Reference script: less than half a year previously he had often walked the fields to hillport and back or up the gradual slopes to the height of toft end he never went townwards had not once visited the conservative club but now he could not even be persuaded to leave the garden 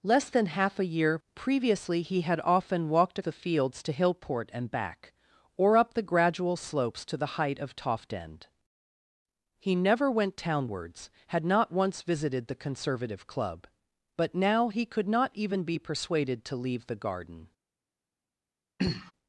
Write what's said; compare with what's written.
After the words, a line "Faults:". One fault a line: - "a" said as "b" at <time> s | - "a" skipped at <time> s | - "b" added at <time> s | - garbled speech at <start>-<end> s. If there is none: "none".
less than half a year previously he had often walked the fields to hillport and back or up the gradual slopes to the height of toft end he never went townwards had not once visited the conservative club but now he could not even be persuaded to leave the garden
Faults:
none